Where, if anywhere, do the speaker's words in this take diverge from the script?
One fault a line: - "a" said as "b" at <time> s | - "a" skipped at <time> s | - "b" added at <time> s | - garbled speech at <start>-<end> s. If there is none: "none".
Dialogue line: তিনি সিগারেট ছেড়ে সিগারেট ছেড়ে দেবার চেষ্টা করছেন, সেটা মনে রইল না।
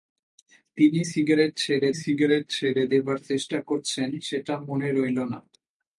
none